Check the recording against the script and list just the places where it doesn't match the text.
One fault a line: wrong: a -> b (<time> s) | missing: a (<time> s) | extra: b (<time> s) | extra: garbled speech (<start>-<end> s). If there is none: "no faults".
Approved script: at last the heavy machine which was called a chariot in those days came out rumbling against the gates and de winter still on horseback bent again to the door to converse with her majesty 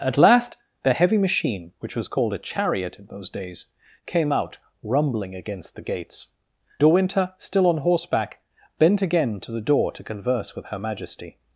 missing: and (6.3 s)